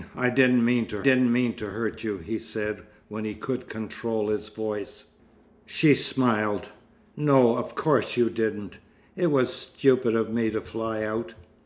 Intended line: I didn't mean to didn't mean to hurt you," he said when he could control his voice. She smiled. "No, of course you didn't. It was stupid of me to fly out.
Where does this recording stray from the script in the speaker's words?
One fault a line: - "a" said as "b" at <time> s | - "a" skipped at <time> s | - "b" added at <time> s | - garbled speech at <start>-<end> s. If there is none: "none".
none